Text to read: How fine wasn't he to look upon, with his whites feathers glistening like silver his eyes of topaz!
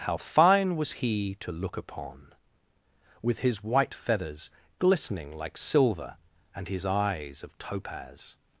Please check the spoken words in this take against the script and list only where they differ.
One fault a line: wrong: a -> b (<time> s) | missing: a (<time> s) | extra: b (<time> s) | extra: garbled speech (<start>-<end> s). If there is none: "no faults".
wrong: wasn't -> was (0.8 s)
wrong: whites -> white (3.6 s)
extra: and (6.5 s)